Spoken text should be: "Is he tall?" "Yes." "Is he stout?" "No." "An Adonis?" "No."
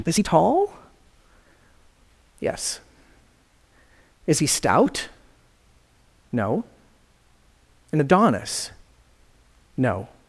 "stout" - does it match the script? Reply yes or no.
yes